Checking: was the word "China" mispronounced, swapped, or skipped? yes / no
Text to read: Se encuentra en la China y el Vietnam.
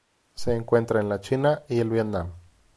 no